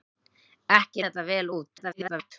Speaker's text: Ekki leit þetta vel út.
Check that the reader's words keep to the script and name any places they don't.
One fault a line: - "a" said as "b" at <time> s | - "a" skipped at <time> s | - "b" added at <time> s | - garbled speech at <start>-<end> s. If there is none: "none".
- "leit" skipped at 1.1 s
- garbled speech at 1.8-2.3 s